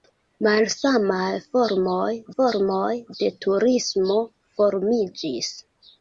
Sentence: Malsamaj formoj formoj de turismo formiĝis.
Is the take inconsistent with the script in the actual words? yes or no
no